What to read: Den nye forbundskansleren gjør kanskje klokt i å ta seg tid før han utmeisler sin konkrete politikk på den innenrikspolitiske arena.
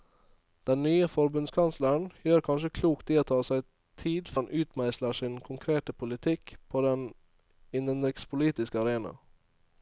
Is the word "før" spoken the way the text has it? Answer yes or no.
no